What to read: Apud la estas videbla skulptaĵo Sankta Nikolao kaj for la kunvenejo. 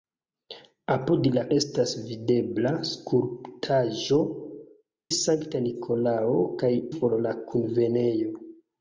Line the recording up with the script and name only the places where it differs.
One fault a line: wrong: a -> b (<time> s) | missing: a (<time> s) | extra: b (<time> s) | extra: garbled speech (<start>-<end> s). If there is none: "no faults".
no faults